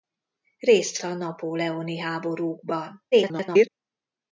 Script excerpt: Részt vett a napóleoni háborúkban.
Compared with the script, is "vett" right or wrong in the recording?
wrong